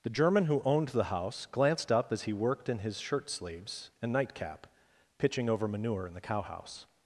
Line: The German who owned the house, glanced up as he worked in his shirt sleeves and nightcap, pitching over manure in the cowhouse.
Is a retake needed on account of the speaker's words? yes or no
no